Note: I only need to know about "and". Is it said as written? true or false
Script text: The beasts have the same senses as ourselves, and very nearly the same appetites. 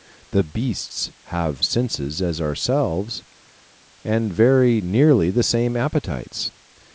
true